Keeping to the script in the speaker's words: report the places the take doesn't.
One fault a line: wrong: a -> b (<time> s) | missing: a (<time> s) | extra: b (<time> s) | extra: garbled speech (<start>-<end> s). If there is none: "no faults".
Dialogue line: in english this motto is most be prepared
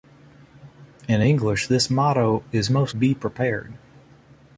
no faults